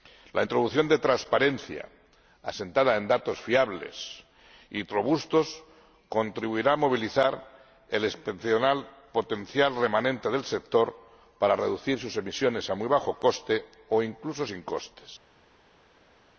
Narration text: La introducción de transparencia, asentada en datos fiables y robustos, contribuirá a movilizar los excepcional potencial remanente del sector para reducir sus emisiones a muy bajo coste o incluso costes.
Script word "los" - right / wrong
wrong